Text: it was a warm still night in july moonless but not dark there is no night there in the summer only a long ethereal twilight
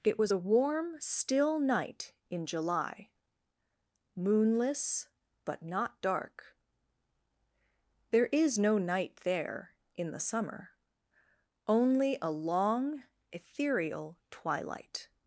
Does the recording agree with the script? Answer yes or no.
yes